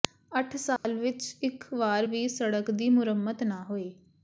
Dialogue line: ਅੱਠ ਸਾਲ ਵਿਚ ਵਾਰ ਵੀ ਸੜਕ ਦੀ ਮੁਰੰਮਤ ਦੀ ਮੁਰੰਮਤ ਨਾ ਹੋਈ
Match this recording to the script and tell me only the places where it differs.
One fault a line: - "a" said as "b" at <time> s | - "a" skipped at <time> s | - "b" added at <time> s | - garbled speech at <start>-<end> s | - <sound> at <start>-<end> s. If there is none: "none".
- dropout at 0.8-0.8 s
- "ਇਕ" added at 1.4 s
- "ਦੀ ਮੁਰੰਮਤ" skipped at 3.4 s